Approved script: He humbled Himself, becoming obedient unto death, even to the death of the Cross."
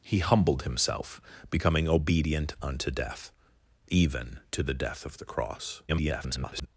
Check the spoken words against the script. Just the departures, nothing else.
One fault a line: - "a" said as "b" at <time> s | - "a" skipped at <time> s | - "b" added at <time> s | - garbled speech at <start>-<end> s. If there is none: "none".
- garbled speech at 5.9-6.7 s